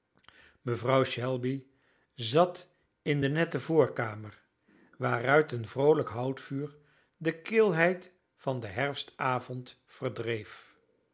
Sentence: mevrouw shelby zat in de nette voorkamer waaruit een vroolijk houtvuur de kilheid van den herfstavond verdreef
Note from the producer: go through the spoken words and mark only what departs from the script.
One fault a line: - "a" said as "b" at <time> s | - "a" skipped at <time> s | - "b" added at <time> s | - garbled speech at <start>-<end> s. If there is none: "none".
none